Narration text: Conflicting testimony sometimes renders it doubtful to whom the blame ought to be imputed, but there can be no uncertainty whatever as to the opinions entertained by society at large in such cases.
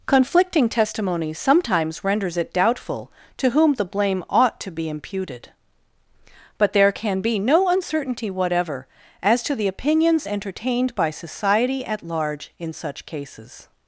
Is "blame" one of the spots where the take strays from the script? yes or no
no